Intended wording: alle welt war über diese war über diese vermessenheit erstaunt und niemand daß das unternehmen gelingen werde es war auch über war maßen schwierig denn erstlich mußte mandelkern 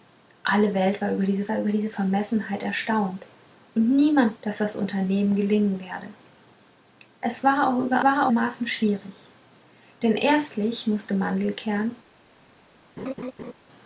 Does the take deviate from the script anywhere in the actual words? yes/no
no